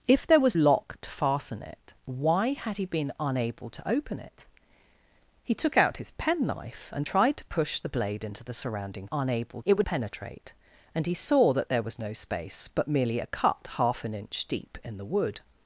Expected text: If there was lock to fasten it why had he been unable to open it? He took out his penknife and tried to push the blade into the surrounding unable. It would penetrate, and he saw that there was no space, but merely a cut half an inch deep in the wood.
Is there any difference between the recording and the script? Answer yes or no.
no